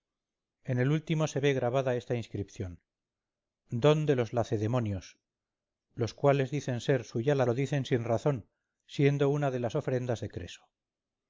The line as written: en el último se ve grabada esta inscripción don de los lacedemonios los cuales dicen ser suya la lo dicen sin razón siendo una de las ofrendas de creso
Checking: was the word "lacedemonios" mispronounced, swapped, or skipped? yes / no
no